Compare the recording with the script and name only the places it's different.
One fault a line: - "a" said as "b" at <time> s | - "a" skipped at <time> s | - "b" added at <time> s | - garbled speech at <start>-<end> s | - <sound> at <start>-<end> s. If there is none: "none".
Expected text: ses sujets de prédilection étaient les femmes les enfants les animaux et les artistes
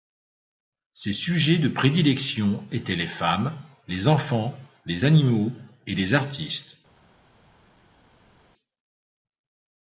none